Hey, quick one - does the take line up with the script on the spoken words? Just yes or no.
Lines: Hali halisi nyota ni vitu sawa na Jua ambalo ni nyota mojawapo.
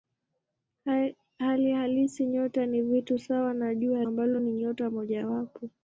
yes